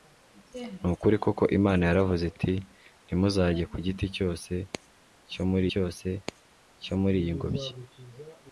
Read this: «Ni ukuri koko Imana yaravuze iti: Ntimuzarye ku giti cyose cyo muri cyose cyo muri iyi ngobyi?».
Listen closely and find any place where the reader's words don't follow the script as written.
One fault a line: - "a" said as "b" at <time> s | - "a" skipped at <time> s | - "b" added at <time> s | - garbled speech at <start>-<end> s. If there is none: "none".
none